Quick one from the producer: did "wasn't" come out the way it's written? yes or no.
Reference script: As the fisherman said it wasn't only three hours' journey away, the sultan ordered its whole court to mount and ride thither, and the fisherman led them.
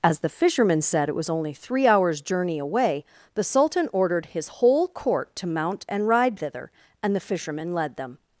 no